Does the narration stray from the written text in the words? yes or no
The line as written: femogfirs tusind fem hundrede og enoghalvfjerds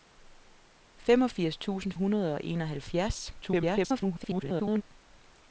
yes